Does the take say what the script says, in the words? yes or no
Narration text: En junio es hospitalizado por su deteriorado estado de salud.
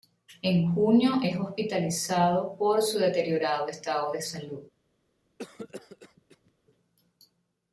yes